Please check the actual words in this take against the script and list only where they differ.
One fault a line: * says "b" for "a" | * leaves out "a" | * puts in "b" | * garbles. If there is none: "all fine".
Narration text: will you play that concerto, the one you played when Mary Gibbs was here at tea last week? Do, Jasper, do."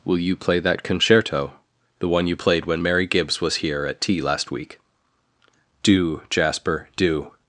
all fine